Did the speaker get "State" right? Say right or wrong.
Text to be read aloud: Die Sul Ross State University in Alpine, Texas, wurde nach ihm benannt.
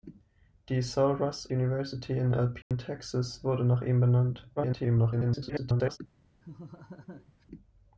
wrong